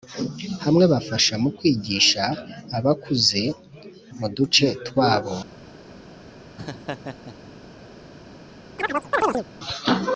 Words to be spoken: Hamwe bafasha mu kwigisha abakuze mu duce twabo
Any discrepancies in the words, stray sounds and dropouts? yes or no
yes